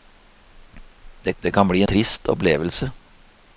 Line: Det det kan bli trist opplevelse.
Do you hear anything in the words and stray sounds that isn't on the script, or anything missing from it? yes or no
no